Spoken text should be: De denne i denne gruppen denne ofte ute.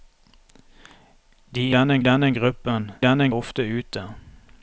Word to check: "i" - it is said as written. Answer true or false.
true